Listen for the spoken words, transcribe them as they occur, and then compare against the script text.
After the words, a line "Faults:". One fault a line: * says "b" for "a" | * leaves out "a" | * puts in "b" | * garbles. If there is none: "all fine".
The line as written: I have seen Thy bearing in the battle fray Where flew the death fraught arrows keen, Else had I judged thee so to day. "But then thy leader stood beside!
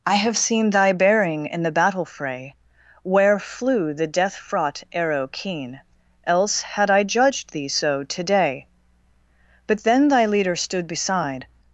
I have seen Thy bearing in the battle fray Where flew the death fraught arrow keen, Else had I judged thee so to day. "But then thy leader stood beside!
Faults:
* says "arrow" for "arrows"